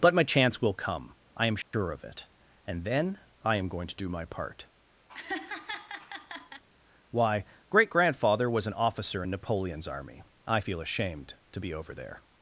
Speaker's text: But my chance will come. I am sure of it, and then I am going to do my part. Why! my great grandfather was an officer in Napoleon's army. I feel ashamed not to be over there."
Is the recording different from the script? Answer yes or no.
yes